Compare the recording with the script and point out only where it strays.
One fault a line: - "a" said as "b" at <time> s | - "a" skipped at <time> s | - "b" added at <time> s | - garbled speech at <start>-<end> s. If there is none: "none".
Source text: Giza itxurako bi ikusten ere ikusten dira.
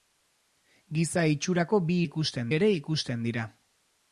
none